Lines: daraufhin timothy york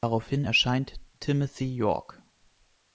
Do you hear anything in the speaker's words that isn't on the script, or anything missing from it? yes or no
yes